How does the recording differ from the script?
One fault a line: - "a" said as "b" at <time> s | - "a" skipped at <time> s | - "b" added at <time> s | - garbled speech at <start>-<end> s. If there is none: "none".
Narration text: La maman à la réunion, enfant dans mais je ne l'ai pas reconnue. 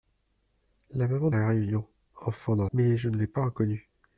none